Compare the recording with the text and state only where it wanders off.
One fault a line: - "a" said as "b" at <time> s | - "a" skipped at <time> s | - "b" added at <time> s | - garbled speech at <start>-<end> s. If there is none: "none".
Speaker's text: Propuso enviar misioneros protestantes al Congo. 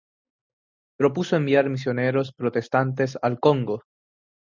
none